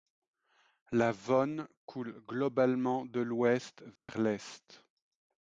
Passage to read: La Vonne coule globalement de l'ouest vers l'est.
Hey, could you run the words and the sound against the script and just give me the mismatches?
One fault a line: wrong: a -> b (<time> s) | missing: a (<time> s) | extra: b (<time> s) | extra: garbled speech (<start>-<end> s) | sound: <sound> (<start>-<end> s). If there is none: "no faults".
sound: dropout (4.0-4.1 s)